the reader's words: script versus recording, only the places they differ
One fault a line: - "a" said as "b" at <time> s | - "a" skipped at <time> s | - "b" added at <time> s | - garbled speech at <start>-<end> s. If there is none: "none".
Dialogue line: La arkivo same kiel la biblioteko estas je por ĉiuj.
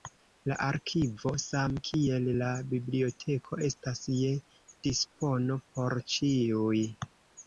- "dispono" added at 4.9 s